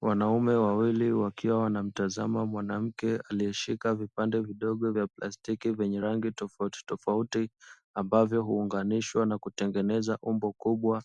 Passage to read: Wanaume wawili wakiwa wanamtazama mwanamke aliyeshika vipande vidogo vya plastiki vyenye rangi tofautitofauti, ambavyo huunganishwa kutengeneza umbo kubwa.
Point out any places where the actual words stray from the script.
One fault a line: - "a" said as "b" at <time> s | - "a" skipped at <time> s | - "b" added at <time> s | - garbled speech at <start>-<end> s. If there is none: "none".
- "na" added at 9.3 s